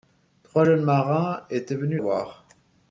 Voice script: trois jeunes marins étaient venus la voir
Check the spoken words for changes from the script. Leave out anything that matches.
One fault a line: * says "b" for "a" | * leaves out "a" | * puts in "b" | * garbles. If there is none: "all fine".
* leaves out "la"